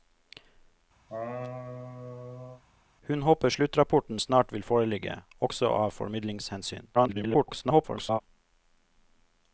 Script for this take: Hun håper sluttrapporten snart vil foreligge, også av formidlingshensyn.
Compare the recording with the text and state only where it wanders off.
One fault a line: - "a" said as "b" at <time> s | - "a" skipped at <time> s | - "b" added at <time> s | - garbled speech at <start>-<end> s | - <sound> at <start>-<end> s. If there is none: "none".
- laugh at 1.1-2.6 s
- garbled speech at 6.9-8.2 s